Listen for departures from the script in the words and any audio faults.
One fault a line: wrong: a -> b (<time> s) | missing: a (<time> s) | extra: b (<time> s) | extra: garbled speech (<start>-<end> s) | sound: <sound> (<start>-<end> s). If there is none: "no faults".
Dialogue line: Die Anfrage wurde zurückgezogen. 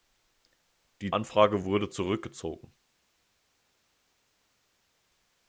no faults